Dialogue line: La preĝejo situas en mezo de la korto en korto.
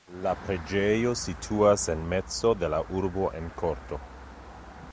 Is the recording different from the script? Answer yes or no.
yes